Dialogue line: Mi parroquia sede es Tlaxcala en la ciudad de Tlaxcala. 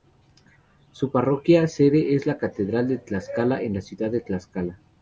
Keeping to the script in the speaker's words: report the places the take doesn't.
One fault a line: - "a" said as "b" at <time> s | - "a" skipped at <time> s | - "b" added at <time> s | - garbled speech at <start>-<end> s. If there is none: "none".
- "Mi" said as "Su" at 0.9 s
- "la Catedral de" added at 2.3 s